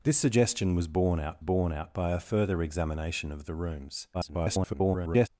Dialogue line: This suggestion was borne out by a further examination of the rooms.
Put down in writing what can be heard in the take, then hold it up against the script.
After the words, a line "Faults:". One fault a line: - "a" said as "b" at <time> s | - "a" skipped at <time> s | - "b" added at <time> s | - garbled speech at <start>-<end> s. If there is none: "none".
This suggestion was borne out borne out by a further examination of the rooms. [garbled]
Faults:
- "borne out" added at 1.4 s
- garbled speech at 4.1-5.3 s